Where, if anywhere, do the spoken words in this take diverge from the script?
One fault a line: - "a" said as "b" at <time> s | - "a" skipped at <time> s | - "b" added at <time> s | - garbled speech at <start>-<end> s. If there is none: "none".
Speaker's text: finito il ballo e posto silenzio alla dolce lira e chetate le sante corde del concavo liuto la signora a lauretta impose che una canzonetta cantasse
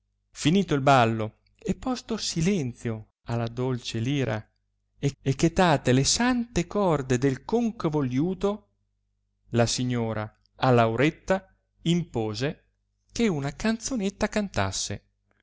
- "e" added at 5.2 s